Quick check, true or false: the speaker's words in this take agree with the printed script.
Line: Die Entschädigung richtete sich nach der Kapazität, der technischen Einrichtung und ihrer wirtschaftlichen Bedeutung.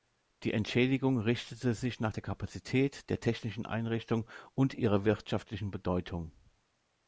true